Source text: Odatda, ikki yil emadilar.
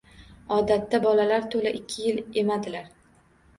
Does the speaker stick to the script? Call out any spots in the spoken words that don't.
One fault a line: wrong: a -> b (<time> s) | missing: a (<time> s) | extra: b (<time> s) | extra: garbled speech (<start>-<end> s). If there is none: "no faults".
extra: bolalar to‘la (1.1 s)